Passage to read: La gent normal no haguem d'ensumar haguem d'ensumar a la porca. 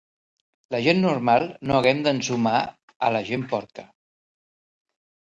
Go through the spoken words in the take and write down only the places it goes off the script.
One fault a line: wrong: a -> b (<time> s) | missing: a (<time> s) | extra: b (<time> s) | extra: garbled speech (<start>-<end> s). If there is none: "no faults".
missing: haguem d'ensumar (2.6 s)
extra: gent (3.3 s)